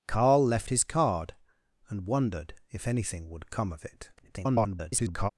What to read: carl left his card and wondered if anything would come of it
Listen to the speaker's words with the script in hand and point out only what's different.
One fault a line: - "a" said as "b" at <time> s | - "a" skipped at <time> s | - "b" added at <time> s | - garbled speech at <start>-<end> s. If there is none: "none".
- garbled speech at 4.2-5.3 s